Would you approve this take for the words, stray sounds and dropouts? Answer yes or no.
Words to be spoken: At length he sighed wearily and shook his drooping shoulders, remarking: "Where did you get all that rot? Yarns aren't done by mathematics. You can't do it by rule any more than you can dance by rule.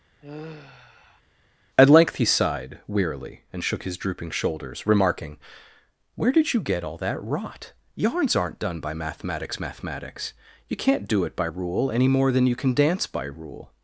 no